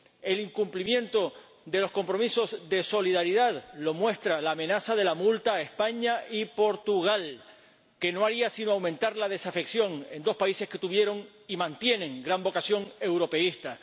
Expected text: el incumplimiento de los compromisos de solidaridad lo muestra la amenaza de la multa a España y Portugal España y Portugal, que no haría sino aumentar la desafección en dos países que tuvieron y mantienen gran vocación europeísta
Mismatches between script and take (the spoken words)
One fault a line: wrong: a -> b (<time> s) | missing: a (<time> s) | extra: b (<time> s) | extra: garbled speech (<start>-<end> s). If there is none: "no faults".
missing: España y Portugal (7.4 s)